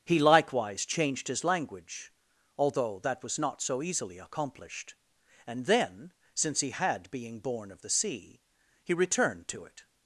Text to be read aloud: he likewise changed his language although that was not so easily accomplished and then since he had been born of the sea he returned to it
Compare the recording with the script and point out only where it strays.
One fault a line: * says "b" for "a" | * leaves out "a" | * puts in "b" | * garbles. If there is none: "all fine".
* says "being" for "been"